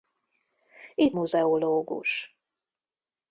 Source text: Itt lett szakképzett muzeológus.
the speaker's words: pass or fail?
fail